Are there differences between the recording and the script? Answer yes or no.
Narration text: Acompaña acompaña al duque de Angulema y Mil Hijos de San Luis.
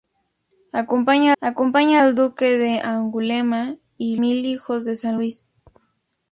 no